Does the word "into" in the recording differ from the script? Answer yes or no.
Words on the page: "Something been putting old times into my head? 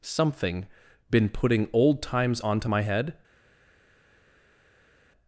yes